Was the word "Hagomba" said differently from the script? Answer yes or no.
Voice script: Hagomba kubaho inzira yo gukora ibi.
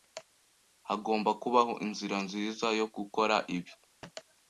no